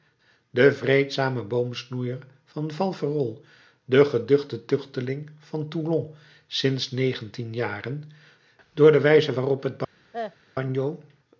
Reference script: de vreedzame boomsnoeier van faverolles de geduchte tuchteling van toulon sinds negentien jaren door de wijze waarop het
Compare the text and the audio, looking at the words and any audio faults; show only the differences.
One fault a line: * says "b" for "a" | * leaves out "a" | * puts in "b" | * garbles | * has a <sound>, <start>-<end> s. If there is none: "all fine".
* has a cough, 10.1-10.4 s